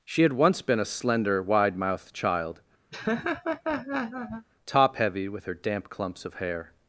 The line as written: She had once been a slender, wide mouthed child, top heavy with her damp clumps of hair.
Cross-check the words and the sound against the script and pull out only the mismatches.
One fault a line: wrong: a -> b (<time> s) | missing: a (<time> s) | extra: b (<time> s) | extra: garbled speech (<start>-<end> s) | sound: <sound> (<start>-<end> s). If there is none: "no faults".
sound: laugh (2.9-4.5 s)